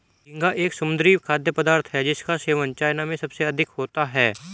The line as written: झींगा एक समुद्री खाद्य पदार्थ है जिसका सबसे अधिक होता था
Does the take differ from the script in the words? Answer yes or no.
yes